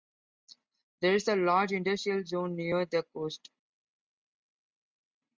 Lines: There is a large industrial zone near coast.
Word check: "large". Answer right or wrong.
right